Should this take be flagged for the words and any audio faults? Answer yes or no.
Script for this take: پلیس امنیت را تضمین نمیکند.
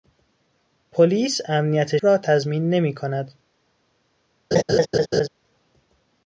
yes